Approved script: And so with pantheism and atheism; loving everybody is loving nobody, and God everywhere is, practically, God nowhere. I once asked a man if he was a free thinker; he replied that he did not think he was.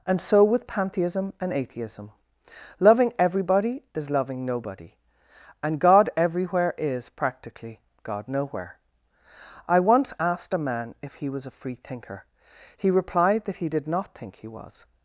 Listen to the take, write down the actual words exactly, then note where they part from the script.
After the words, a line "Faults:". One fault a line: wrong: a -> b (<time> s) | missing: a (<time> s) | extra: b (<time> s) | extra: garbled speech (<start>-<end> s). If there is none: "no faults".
And so with pantheism and atheism; loving everybody is loving nobody, and God everywhere is, practically, God nowhere. I once asked a man if he was a free thinker; he replied that he did not think he was.
Faults:
no faults